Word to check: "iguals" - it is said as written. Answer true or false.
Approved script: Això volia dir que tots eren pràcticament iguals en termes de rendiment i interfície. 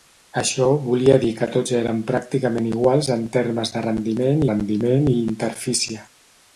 true